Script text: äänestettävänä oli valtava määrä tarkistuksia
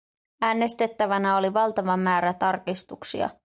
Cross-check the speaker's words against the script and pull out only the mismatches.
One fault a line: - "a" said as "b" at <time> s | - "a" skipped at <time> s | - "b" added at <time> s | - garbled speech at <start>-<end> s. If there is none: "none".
none